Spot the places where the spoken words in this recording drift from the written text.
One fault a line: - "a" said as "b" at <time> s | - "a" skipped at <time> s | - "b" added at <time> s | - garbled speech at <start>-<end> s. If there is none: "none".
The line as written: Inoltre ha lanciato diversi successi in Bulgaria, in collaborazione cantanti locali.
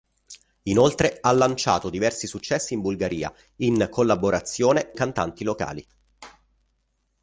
none